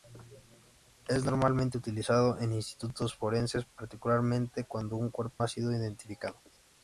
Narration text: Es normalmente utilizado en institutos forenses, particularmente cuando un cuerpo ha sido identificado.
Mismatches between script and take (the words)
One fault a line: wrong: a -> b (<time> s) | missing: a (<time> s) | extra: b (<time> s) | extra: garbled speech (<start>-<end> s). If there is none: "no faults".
no faults